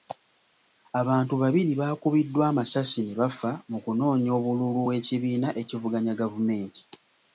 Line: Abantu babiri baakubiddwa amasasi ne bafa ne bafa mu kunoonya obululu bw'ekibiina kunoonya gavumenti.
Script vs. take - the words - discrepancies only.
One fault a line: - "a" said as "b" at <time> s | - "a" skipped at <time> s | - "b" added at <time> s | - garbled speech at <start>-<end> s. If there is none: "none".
- "ne bafa" skipped at 3.5 s
- "kunoonya" said as "ekivuganya" at 5.6 s